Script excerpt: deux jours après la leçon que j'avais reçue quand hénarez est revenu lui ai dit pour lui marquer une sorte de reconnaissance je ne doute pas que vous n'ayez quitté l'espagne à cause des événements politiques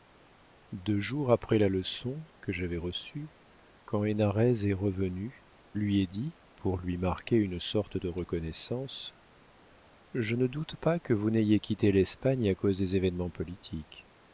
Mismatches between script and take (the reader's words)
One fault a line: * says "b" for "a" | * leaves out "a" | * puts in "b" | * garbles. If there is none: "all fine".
all fine